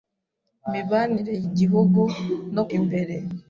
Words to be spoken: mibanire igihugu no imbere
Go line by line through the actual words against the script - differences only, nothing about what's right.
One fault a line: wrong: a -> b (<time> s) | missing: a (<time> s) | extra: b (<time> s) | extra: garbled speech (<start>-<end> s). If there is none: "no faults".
no faults